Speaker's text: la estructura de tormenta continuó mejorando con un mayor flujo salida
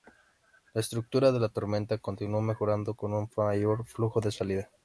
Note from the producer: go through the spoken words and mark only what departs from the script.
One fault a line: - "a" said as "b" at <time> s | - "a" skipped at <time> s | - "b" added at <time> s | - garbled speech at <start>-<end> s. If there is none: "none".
- "la" added at 1.4 s
- "de" added at 4.2 s